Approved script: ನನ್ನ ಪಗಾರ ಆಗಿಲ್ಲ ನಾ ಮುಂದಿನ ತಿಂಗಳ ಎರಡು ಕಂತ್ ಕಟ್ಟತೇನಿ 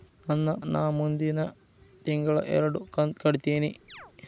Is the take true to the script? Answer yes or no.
no